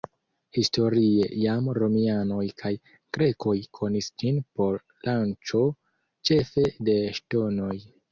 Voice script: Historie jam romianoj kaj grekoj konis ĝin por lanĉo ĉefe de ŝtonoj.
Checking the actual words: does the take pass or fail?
pass